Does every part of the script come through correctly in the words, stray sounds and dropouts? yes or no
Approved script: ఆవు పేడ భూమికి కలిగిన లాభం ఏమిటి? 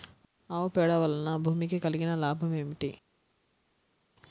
no